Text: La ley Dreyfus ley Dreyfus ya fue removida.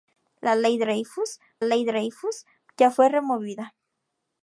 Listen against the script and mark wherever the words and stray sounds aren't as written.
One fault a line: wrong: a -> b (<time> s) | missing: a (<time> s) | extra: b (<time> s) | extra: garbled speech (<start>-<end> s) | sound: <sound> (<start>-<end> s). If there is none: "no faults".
no faults